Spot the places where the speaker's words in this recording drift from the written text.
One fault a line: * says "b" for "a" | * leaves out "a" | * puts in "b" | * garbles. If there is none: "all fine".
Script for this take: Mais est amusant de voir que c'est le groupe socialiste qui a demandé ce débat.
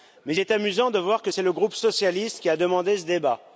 all fine